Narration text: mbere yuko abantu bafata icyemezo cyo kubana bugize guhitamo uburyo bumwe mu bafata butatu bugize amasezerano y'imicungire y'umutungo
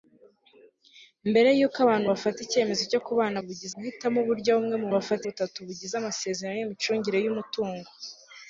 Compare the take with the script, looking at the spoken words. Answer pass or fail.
pass